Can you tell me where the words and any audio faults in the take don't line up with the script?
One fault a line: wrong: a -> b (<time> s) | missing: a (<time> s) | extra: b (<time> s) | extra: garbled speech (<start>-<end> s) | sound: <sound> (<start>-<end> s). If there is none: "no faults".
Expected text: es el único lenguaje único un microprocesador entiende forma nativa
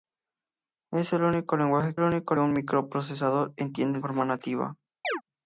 sound: chirp (5.0-5.2 s)